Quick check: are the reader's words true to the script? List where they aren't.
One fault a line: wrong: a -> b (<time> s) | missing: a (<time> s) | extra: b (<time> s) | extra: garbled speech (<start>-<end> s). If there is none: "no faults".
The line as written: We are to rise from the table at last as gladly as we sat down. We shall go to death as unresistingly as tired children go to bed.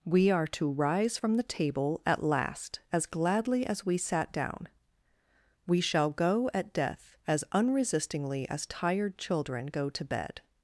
wrong: to -> at (6.5 s)